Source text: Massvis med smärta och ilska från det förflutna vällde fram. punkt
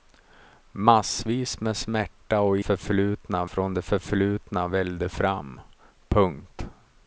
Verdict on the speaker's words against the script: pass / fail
fail